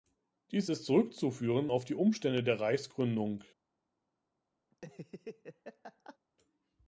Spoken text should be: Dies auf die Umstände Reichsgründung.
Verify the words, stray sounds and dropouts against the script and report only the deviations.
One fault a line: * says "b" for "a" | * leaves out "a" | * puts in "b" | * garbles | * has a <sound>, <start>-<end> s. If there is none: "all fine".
* puts in "ist zurückzuführen"
* puts in "der"
* has a laugh, 4.7-6.2 s